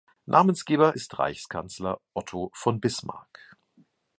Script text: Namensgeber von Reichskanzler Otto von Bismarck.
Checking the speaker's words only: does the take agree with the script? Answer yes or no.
no